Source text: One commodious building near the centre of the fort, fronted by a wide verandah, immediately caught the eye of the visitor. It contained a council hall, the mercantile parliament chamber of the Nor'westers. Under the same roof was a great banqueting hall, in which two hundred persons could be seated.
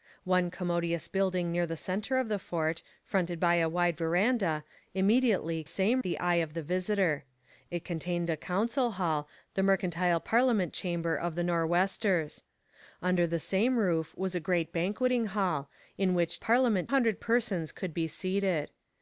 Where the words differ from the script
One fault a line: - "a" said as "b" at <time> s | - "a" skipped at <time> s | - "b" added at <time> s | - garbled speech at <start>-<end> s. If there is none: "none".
- "caught" said as "same" at 5.6 s
- "two" said as "parliament" at 16.4 s